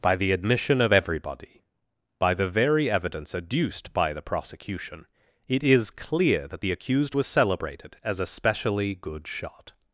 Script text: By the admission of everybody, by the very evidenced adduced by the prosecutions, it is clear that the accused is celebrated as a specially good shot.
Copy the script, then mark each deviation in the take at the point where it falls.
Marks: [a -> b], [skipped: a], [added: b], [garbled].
By the admission of everybody, by the very [evidenced -> evidence] adduced by the [prosecutions, -> prosecution] it is clear that the accused [is -> was] celebrated as a specially good shot.